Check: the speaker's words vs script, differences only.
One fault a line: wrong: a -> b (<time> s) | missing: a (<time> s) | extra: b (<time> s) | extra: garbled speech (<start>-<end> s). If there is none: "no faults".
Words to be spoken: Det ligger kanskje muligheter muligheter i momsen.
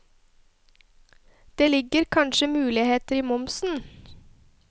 missing: muligheter (3.1 s)